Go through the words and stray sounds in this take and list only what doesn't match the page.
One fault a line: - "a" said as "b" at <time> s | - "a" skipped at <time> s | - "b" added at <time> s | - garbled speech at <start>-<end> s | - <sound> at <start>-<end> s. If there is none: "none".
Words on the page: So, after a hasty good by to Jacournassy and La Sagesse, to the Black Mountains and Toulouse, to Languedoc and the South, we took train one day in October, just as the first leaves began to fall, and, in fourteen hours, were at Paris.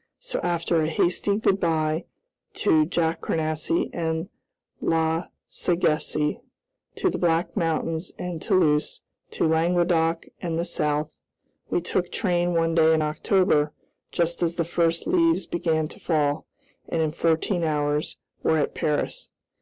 none